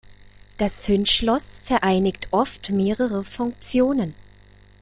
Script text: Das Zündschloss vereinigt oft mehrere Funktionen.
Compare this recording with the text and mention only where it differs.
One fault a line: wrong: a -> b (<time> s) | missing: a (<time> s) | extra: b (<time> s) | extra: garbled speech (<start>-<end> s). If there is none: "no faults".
no faults